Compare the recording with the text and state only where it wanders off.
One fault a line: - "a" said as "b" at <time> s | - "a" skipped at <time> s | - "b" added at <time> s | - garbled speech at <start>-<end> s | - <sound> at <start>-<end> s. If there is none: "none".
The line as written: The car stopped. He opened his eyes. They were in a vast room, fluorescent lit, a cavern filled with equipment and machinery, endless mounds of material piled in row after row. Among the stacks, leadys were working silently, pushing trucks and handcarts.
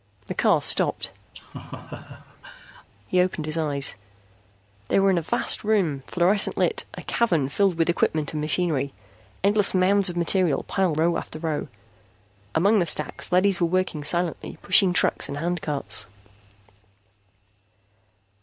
- laugh at 1.3-2.9 s
- "in" skipped at 11.0 s